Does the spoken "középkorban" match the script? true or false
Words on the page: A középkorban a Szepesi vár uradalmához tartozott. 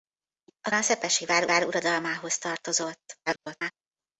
false